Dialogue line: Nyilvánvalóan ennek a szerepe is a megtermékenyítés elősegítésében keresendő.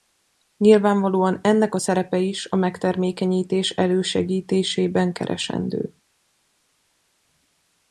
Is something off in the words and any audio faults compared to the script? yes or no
no